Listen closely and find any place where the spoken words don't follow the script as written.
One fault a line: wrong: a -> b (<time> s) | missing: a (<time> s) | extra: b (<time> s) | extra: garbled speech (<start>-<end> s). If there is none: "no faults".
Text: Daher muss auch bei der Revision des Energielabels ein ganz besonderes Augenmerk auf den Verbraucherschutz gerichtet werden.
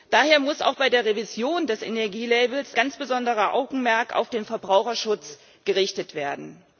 missing: ein (2.8 s)